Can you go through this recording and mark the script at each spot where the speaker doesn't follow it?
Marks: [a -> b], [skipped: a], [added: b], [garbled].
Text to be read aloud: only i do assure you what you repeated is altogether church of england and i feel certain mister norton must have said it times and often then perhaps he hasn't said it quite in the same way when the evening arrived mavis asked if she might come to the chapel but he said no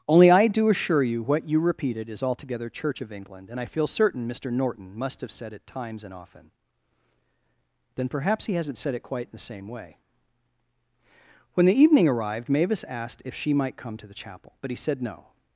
only i do assure you what you repeated is altogether church of england and i feel certain mister norton must have said it times and often then perhaps he hasn't said it quite in the same way when the evening arrived mavis asked if she might come to the chapel but he said no